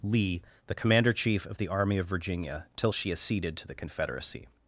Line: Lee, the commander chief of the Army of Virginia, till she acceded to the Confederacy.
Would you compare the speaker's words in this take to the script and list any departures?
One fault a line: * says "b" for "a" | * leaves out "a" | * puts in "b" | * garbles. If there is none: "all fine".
all fine